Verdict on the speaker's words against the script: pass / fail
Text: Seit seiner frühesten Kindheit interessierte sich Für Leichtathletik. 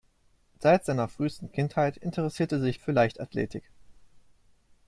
pass